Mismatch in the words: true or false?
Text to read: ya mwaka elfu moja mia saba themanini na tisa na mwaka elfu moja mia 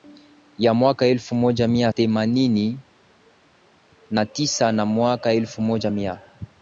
true